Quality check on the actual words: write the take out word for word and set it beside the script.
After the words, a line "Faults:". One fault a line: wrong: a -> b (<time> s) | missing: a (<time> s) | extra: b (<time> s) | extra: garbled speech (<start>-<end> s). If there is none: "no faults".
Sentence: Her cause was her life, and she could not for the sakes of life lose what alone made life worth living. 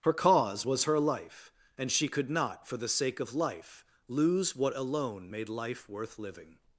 Her cause was her life, and she could not for the sake of life lose what alone made life worth living.
Faults:
wrong: sakes -> sake (2.9 s)